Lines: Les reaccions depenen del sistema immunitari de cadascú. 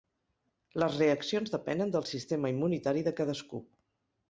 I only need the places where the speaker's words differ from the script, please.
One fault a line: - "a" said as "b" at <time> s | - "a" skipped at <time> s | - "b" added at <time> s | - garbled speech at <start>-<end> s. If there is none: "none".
none